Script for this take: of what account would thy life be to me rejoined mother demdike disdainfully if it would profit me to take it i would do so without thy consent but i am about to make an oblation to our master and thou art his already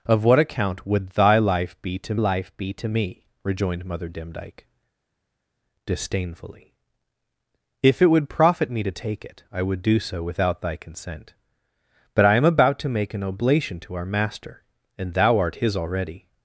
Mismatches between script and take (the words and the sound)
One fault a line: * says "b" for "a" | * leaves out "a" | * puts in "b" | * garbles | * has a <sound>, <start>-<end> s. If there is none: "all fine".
* puts in "life be to"